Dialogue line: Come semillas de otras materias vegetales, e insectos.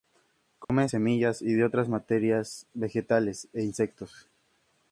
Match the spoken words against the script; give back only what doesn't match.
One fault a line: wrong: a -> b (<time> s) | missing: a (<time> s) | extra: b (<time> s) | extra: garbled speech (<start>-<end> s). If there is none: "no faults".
extra: y (1.4 s)